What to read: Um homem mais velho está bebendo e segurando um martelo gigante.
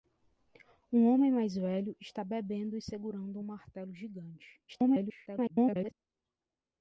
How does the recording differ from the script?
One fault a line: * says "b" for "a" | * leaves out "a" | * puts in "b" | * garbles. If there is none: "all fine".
* garbles